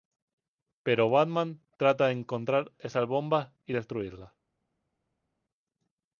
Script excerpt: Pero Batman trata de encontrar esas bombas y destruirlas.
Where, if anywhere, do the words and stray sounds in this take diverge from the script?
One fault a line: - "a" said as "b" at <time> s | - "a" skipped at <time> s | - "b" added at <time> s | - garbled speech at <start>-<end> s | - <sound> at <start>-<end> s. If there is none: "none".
none